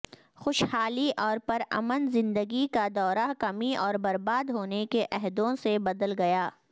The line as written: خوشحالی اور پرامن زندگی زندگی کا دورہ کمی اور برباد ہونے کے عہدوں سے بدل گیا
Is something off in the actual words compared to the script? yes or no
yes